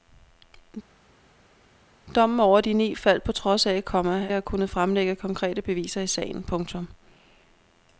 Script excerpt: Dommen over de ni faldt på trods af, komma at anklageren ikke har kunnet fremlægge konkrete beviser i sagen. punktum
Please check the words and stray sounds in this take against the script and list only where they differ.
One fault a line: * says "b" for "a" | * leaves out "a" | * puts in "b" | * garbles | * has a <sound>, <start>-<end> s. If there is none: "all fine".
* leaves out "at anklageren ikke"